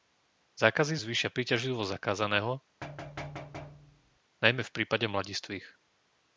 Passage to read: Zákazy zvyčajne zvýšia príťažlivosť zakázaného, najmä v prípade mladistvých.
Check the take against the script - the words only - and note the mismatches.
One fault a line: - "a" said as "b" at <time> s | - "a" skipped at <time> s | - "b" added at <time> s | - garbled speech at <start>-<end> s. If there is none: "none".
- "zvyčajne" skipped at 1.0 s